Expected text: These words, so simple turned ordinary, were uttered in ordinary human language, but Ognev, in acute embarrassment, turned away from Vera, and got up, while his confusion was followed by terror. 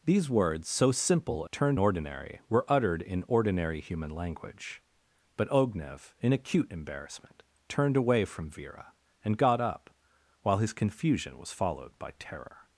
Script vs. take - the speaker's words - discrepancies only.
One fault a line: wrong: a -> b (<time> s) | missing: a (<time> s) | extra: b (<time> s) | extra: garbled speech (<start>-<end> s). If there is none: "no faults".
no faults